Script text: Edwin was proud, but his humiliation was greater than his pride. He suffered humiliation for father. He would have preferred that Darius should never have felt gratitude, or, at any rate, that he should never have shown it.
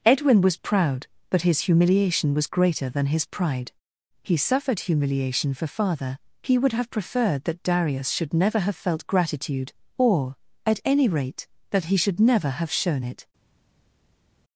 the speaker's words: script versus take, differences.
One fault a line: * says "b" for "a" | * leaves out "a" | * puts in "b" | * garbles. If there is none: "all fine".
all fine